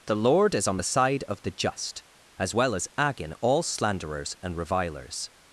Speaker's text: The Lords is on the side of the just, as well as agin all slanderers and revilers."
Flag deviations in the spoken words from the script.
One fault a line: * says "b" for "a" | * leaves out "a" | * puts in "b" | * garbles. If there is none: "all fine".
* says "Lord" for "Lords"